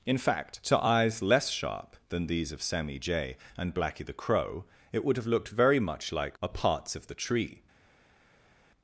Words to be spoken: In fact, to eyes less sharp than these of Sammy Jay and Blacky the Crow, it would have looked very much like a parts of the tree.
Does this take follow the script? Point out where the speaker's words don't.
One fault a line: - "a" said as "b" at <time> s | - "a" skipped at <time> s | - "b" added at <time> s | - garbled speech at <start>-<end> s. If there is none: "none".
none